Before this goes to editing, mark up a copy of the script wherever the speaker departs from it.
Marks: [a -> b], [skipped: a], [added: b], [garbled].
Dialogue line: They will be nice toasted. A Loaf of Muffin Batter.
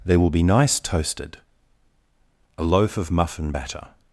They will be nice toasted. A Loaf of Muffin Batter.